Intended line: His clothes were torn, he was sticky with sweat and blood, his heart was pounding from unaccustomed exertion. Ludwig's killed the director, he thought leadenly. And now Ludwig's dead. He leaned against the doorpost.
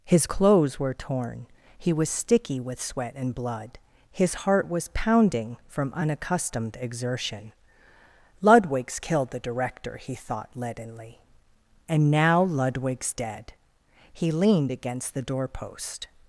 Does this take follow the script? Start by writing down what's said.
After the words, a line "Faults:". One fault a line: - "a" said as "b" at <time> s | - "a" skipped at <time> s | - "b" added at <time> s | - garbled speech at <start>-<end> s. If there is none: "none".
His clothes were torn, he was sticky with sweat and blood, his heart was pounding from unaccustomed exertion. Ludwig's killed the director, he thought leadenly. And now Ludwig's dead. He leaned against the doorpost.
Faults:
none